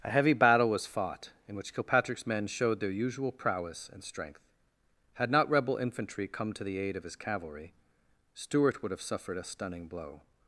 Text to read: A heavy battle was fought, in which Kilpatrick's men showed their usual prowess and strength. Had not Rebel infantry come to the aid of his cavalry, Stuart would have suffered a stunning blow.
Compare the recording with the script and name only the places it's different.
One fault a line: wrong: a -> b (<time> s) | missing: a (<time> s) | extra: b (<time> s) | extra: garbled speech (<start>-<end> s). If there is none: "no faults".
no faults